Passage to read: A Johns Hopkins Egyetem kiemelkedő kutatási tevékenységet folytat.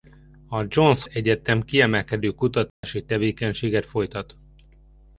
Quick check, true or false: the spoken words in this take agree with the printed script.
false